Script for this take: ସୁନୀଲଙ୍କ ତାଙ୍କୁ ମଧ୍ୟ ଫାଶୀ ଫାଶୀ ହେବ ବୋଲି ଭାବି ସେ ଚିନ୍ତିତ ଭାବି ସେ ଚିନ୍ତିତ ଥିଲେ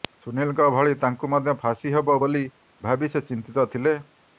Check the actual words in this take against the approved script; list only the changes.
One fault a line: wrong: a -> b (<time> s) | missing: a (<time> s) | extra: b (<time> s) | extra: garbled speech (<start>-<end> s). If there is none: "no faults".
extra: ଭଳି (0.8 s)
missing: ଫାଶୀ (1.9 s)
missing: ଭାବି ସେ ଚିନ୍ତିତ (3.7 s)